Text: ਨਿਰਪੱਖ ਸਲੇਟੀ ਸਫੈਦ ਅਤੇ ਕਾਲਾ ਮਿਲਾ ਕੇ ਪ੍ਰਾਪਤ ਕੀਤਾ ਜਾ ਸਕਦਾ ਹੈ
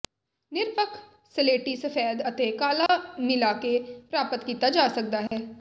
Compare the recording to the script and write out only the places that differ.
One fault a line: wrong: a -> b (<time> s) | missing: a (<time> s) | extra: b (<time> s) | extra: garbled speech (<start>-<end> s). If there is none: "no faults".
no faults